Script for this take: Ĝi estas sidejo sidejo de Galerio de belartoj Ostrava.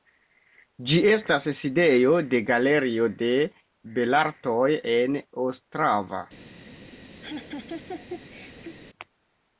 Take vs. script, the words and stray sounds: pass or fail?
fail